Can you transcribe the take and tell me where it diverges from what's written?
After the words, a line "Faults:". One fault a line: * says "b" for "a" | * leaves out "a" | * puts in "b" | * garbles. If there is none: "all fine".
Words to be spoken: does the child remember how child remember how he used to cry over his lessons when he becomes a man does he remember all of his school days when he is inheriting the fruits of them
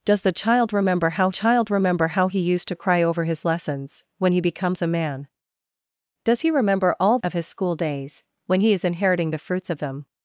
does the child remember how child remember how he used to cry over his lessons when he becomes a man does he remember all of his school days when he is inheriting the fruits of them
Faults:
all fine